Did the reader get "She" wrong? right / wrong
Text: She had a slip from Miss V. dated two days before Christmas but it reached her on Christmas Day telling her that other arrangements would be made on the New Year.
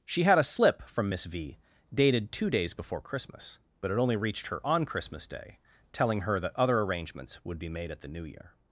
right